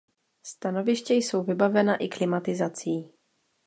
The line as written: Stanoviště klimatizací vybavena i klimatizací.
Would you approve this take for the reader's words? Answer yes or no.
no